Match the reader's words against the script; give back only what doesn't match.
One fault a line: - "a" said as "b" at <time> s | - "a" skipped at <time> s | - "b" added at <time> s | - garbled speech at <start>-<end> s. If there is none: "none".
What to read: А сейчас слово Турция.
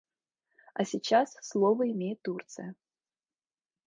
- "имеет" added at 1.9 s